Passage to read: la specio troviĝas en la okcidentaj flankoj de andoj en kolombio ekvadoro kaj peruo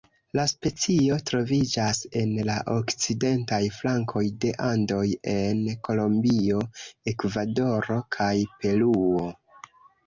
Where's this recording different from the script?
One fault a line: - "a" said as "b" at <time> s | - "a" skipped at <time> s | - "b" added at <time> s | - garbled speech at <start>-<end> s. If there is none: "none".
none